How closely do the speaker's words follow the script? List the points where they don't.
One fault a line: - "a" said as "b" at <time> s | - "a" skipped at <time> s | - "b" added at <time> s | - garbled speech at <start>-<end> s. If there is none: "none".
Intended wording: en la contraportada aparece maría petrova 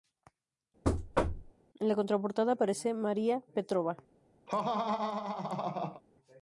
none